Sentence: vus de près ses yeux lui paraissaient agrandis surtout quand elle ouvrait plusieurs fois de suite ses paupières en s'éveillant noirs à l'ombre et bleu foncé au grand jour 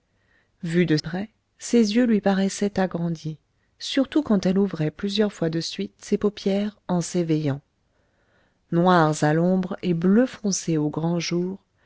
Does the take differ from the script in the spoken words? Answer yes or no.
no